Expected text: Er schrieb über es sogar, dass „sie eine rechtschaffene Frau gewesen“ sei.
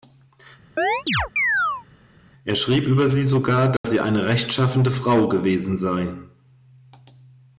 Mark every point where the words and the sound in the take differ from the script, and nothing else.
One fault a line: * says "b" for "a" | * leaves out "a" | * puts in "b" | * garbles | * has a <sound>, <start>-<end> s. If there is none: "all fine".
* has a chirp, 0.8-1.8 s
* says "sie" for "es"
* has a dropout, 3.8-3.8 s